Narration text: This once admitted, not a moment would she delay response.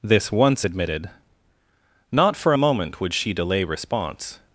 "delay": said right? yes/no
yes